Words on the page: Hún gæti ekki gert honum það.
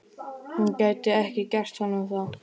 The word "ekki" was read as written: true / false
true